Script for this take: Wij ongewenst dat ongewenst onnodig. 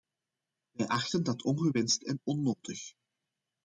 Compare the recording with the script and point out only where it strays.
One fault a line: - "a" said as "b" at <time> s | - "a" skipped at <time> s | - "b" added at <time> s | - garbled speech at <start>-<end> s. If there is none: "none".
- "ongewenst" said as "achten" at 0.8 s
- "en" added at 2.0 s